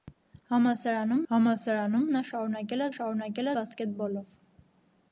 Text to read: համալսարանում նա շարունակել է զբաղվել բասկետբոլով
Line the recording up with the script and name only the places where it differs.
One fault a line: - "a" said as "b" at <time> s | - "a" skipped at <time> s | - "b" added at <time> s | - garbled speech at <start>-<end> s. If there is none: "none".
- "համալսարանում" added at 1.3 s
- "զբաղվել" said as "շարունակել" at 3.0 s